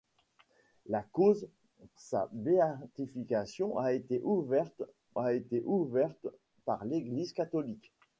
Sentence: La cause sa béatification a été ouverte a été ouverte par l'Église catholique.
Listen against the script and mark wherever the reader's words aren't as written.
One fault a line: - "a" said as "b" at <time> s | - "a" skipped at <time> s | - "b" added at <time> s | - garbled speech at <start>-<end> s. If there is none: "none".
none